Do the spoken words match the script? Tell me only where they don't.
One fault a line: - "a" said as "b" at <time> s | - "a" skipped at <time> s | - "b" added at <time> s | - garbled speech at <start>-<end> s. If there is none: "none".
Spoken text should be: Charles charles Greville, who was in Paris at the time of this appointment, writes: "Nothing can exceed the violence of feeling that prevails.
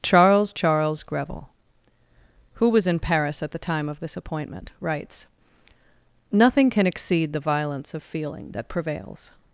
none